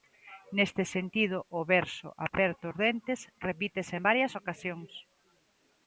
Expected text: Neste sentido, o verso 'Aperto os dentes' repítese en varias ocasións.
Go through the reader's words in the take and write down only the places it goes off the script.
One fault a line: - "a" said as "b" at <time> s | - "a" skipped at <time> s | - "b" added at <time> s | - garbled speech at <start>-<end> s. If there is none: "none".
none